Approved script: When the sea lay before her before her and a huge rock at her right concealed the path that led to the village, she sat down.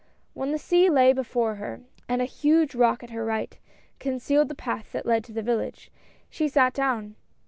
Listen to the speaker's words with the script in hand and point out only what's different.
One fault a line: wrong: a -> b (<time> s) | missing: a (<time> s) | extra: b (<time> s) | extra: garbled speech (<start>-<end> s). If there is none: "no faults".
missing: before her (1.8 s)